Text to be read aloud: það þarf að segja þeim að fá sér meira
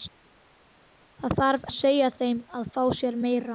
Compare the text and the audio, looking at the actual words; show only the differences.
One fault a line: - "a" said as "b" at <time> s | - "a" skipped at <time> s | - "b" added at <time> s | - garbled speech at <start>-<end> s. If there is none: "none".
none